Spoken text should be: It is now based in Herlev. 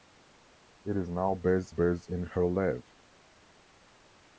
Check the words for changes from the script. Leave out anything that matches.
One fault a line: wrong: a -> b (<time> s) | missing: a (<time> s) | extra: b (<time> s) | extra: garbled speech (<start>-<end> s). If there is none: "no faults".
extra: based (1.7 s)